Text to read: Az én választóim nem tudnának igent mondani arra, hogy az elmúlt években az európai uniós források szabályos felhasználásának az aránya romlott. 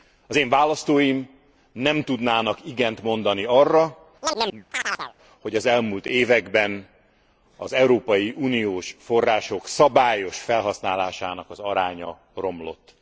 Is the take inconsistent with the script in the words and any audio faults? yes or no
yes